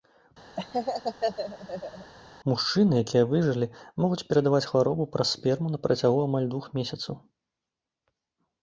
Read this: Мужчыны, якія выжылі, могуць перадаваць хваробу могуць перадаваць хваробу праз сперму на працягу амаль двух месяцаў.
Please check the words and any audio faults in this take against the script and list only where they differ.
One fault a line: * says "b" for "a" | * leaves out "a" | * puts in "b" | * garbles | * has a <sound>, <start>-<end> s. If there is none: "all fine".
* has a laugh, 0.6-2.1 s
* leaves out "могуць перадаваць хваробу"